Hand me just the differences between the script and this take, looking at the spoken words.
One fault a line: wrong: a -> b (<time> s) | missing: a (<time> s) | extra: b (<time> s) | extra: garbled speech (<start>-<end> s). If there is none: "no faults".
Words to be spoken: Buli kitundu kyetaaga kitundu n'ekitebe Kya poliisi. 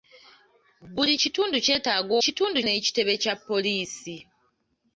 no faults